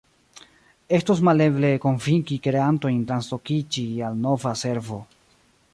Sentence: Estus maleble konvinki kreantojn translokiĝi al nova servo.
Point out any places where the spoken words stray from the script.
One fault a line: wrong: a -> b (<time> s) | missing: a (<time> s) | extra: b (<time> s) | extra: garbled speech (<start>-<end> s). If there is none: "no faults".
no faults